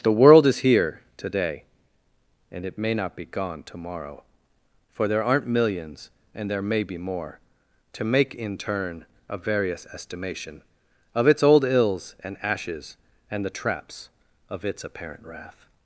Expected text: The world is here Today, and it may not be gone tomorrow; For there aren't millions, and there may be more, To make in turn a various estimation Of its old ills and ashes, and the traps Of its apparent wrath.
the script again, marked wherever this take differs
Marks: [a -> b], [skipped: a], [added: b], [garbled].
The world is here Today, and it may not be gone tomorrow; For there aren't millions, and there may be more, To make in turn a various estimation Of its old ills and ashes, and the traps Of its apparent wrath.